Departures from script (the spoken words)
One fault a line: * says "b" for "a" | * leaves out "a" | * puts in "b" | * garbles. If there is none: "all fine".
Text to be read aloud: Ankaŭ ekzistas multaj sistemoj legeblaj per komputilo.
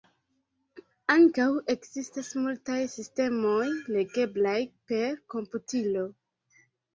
all fine